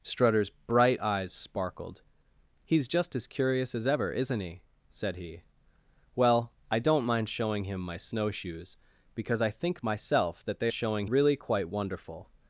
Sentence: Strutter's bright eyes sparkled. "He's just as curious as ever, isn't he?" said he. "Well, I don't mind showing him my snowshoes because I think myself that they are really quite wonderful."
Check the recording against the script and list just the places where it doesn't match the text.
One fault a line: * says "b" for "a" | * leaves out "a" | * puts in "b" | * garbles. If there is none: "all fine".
* says "showing" for "are"